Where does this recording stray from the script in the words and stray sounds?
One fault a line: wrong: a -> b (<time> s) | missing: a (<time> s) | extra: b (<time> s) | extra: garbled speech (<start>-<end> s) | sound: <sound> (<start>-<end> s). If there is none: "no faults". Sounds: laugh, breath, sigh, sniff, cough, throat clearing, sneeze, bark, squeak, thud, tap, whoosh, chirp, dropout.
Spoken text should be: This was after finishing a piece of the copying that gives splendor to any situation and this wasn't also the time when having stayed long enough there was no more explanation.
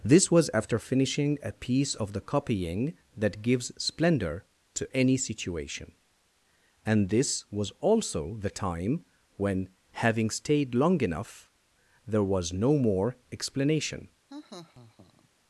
wrong: wasn't -> was (7.5 s)
sound: laugh (14.3-15.3 s)